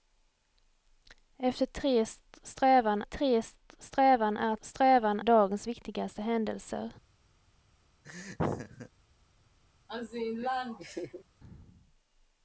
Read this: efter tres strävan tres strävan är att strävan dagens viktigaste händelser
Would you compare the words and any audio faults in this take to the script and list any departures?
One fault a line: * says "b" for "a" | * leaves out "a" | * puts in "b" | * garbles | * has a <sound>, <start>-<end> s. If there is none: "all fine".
* has a laugh, 8.0-8.9 s
* has a laugh, 9.9-11.2 s